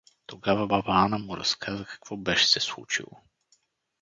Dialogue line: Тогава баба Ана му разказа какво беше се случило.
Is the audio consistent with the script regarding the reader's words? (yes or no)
yes